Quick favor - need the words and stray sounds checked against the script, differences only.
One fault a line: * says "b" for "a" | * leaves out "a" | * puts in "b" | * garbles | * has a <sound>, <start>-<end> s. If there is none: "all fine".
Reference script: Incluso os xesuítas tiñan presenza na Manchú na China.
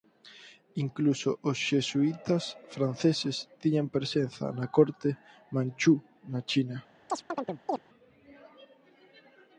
* puts in "franceses"
* puts in "corte"
* has a chirp, 7.1-7.8 s